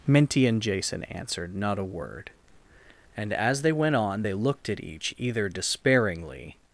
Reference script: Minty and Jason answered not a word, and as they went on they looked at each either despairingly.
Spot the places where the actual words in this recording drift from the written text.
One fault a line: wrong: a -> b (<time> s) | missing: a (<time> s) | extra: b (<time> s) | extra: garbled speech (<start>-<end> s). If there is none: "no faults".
no faults